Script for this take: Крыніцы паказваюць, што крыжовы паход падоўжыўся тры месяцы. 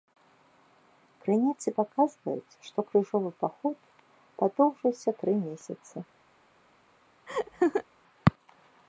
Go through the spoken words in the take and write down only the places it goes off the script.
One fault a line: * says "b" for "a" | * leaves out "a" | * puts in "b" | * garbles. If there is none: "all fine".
all fine